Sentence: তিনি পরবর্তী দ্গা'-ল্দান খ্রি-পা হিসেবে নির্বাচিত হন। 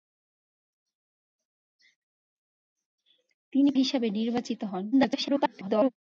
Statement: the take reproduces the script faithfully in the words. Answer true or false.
false